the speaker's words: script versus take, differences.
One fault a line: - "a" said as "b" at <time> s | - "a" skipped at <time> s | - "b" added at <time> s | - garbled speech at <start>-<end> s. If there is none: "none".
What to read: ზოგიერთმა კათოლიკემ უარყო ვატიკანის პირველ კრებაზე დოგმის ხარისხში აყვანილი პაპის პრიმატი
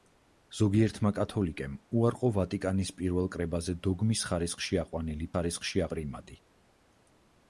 - "პაპის" said as "ხარისხში" at 5.3 s